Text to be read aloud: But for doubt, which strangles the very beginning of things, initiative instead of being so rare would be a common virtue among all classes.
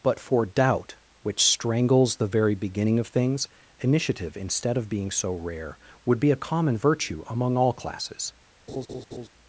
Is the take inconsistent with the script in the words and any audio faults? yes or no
yes